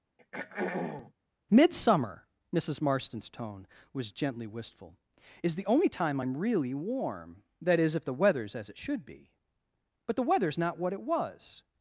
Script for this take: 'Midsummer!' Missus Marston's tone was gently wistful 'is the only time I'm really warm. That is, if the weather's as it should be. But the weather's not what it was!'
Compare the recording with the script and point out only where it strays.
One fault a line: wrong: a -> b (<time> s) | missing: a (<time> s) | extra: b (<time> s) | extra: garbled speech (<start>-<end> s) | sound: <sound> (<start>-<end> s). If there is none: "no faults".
sound: throat clearing (0.2-1.1 s)